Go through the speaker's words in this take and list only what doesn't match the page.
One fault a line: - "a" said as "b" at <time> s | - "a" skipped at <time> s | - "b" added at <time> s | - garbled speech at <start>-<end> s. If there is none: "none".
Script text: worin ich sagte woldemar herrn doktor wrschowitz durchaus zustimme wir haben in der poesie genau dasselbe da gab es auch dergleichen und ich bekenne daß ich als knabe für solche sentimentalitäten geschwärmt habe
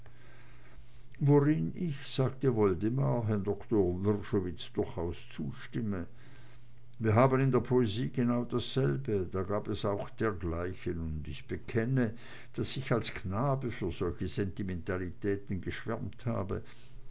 none